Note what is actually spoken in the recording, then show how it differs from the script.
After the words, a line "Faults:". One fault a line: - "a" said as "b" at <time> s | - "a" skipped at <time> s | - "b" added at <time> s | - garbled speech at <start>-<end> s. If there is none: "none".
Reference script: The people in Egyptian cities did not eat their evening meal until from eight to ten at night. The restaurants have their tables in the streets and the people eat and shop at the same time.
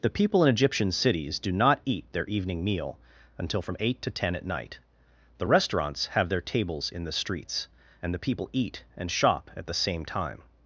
The people in Egyptian cities do not eat their evening meal until from eight to ten at night. The restaurants have their tables in the streets and the people eat and shop at the same time.
Faults:
- "did" said as "do" at 1.4 s